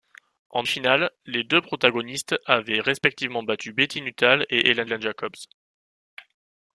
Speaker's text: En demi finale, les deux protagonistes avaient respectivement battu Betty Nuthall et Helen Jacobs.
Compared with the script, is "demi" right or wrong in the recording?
wrong